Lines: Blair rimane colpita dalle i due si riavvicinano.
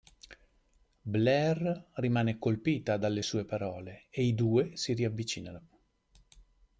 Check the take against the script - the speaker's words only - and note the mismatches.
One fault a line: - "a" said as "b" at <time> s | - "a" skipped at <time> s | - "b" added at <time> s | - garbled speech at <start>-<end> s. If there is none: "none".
- "sue parole e" added at 3.2 s